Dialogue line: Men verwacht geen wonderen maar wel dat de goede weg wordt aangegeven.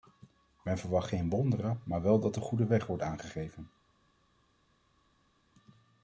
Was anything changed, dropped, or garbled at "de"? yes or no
no